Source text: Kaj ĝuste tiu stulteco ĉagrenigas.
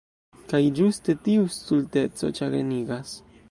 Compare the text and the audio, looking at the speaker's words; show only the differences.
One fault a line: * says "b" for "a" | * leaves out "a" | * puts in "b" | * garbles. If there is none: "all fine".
all fine